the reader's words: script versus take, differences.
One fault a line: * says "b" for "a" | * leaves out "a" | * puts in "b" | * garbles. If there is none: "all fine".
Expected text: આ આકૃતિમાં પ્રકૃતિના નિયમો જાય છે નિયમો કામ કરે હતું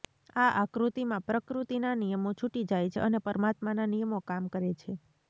* puts in "છૂટી"
* puts in "અને પરમાત્માના"
* says "છે" for "હતું"